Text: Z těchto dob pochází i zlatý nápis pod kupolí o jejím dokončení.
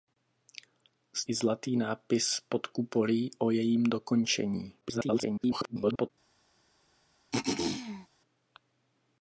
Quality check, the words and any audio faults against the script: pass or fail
fail